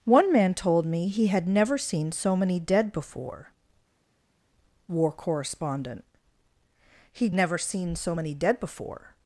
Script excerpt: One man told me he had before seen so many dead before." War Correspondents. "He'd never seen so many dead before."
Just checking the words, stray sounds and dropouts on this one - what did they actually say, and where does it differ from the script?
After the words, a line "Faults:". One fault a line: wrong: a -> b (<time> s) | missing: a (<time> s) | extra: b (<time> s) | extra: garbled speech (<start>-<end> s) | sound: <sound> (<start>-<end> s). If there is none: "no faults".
One man told me he had never seen so many dead before." War Correspondent. "He'd never seen so many dead before."
Faults:
wrong: before -> never (1.5 s)
wrong: Correspondents -> Correspondent (5.1 s)